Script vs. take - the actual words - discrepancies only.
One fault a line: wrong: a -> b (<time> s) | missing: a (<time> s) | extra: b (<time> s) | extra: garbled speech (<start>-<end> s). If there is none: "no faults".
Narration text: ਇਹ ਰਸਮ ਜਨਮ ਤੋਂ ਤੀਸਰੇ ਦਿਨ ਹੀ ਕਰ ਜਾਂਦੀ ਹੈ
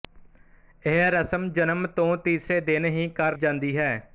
no faults